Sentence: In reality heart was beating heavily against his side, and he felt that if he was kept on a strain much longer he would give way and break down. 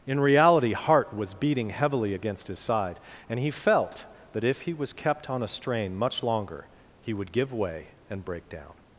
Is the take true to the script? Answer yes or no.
yes